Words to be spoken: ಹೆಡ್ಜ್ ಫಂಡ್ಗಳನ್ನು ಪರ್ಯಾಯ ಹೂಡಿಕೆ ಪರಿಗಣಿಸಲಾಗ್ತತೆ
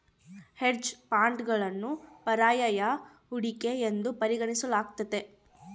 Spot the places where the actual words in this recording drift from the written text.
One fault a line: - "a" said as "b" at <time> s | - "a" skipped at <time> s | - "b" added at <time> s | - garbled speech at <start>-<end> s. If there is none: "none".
- "ಎಂದು" added at 3.9 s